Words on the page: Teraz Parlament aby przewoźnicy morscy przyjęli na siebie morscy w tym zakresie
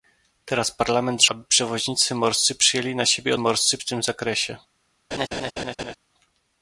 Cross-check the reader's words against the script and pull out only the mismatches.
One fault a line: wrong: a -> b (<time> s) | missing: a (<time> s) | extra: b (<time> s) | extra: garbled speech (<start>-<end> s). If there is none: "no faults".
no faults